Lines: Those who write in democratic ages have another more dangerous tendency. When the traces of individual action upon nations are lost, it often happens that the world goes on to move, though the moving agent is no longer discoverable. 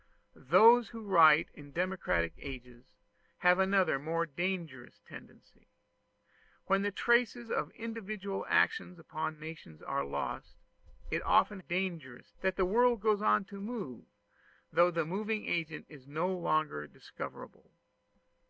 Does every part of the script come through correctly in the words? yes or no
no